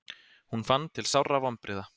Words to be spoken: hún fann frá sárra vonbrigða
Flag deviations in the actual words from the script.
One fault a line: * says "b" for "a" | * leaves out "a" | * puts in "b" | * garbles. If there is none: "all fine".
* says "til" for "frá"